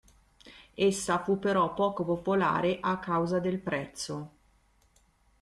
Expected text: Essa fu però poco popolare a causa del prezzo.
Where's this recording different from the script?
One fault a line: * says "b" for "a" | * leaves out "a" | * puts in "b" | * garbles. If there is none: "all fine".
all fine